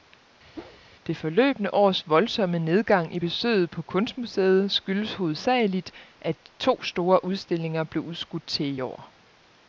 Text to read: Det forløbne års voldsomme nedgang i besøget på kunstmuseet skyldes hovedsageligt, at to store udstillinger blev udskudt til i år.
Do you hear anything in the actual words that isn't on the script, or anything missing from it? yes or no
no